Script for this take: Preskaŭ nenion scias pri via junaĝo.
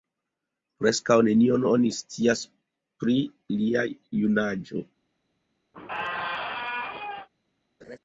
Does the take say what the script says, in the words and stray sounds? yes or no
no